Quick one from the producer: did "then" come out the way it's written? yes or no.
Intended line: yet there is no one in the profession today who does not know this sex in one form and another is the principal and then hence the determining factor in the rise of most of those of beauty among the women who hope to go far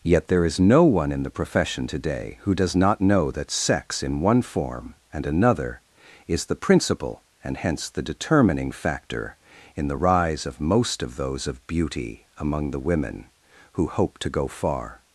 no